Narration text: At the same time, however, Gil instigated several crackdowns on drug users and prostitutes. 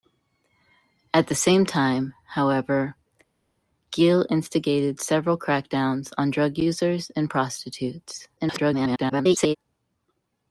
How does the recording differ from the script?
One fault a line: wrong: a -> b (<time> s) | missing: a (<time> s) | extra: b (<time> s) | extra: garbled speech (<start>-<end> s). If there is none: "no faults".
extra: garbled speech (8.4-9.6 s)